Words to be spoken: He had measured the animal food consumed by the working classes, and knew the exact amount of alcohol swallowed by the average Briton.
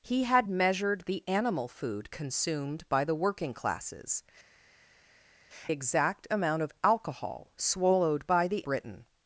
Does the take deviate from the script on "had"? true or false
false